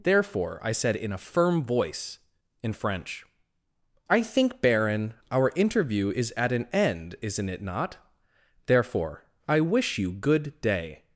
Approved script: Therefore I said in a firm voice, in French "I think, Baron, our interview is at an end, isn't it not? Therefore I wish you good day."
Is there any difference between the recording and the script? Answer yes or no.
no